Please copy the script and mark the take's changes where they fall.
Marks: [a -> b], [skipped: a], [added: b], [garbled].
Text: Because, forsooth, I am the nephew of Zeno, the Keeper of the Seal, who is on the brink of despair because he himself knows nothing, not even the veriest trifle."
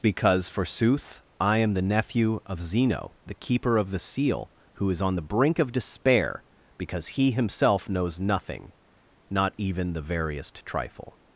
Because, forsooth, I am the nephew of Zeno, the Keeper of the Seal, who is on the brink of despair because he himself knows nothing, not even the veriest trifle."